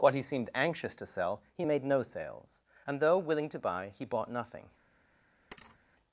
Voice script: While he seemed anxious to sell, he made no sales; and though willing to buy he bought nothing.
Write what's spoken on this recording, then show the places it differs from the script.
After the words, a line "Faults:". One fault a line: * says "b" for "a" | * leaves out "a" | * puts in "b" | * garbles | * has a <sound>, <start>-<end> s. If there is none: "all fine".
What he seemed anxious to sell, he made no sales; and though willing to buy he bought nothing.
Faults:
* says "What" for "While"
* has a thud, 5.5-5.8 s